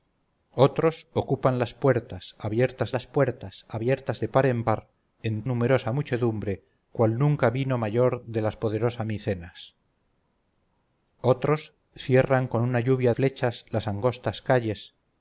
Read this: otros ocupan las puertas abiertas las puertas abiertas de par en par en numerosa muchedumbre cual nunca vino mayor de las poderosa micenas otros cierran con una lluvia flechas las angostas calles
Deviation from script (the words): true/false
false